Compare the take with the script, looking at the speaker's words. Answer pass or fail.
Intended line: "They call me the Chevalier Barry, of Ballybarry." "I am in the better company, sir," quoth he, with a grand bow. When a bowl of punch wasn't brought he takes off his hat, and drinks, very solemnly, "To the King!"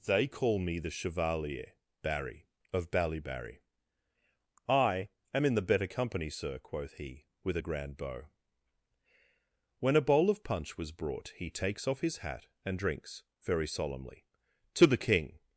fail